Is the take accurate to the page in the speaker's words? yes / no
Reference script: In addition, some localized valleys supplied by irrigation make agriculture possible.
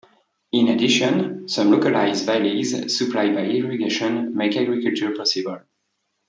yes